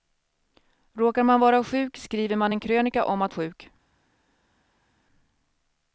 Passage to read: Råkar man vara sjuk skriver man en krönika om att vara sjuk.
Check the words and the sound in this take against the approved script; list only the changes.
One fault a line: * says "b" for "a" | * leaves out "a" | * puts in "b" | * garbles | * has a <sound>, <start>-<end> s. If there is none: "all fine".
* leaves out "vara"